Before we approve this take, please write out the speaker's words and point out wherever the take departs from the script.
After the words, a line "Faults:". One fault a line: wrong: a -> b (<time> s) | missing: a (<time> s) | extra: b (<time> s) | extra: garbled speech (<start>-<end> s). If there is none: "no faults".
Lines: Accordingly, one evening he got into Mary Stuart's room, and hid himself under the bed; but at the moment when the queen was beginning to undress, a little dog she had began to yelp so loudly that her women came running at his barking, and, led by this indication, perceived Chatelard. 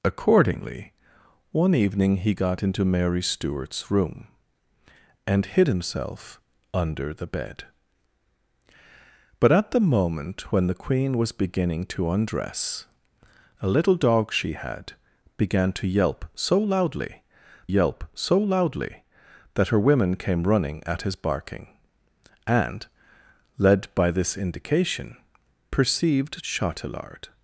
Accordingly, one evening he got into Mary Stuart's room, and hid himself under the bed; but at the moment when the queen was beginning to undress, a little dog she had began to yelp so loudly yelp so loudly that her women came running at his barking, and, led by this indication, perceived Chatelard.
Faults:
extra: yelp so loudly (17.7 s)